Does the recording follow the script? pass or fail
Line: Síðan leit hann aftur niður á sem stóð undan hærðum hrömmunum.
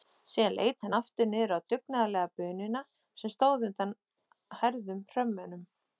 fail